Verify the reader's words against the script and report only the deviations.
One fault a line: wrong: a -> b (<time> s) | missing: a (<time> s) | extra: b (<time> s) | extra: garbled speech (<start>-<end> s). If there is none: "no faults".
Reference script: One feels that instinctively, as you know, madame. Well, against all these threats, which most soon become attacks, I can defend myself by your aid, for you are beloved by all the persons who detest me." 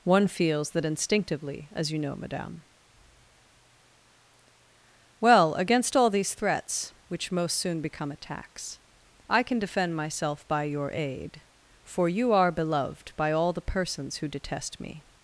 no faults